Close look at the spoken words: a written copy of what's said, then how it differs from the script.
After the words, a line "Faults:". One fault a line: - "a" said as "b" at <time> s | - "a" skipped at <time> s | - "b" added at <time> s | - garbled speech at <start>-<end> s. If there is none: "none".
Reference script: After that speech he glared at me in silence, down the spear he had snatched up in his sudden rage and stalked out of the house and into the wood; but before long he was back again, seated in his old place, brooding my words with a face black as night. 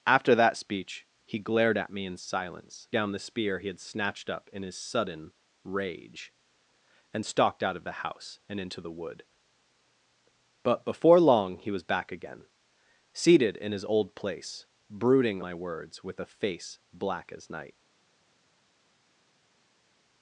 After that speech he glared at me in silence, down the spear he had snatched up in his sudden rage and stalked out of the house and into the wood; but before long he was back again, seated in his old place, brooding my words with a face black as night.
Faults:
none